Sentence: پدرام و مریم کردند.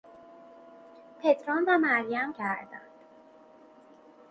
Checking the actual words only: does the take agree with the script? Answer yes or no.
yes